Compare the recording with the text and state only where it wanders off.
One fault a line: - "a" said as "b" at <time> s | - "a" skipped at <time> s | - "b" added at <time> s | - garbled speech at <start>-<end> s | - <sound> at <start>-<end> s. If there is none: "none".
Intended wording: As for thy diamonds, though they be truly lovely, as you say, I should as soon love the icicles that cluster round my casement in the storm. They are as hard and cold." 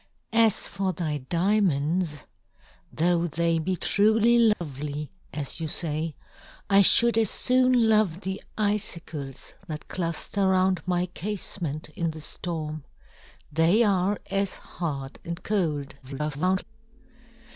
- dropout at 4.5-4.6 s
- garbled speech at 16.0-16.6 s